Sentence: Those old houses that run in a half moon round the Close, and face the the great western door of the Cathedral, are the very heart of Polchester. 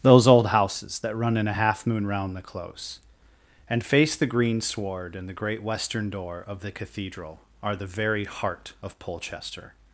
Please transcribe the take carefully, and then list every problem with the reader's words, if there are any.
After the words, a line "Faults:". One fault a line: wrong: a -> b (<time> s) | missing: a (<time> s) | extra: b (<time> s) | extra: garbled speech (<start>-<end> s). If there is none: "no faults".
Those old houses that run in a half moon round the Close, and face the green sward and the great western door of the Cathedral, are the very heart of Polchester.
Faults:
extra: green sward and (4.3 s)